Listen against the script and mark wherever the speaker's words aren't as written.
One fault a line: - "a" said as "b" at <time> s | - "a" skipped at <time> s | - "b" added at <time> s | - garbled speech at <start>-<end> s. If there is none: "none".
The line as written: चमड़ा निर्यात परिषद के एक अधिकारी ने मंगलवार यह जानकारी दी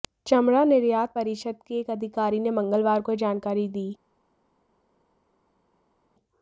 - "को" added at 3.0 s